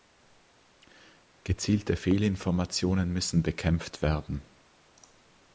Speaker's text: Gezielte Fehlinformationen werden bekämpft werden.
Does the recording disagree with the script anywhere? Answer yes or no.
yes